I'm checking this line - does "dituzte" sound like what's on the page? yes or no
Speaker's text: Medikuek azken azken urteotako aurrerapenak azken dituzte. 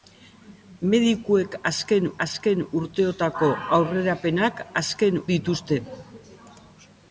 yes